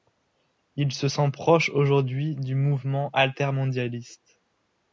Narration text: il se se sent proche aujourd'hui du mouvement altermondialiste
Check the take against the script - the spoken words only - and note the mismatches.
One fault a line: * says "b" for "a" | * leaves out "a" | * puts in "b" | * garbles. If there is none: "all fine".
* leaves out "se"